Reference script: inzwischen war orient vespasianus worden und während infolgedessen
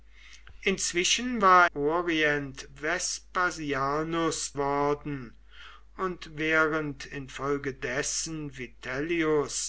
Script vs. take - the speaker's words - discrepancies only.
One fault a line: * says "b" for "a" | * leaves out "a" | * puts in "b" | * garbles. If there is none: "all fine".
all fine